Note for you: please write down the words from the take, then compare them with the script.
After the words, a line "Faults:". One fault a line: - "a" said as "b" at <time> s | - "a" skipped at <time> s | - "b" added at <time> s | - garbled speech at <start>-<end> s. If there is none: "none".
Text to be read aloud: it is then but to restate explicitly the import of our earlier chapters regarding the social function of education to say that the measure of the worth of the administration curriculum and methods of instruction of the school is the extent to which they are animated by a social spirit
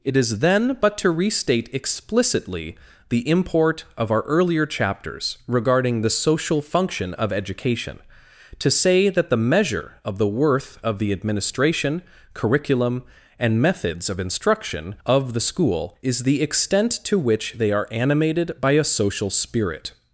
it is then but to restate explicitly the import of our earlier chapters regarding the social function of education to say that the measure of the worth of the administration curriculum and methods of instruction of the school is the extent to which they are animated by a social spirit
Faults:
none